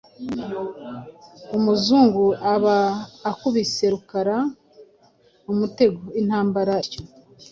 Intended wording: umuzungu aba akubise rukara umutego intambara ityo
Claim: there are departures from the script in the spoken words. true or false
false